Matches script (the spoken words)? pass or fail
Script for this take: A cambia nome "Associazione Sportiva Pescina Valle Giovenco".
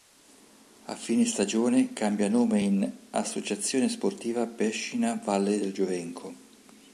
fail